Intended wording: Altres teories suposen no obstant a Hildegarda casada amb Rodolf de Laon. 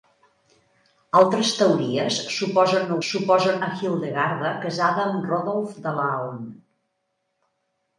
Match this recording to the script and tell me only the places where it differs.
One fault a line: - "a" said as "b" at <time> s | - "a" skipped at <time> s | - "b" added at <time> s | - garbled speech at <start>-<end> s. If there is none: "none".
- "obstant" said as "suposen" at 3.1 s